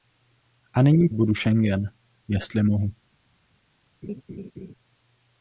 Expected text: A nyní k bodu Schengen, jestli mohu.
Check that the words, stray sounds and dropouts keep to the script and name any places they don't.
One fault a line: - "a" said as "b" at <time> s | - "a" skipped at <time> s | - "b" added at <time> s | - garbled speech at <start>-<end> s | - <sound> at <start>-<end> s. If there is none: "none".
- laugh at 4.0-4.7 s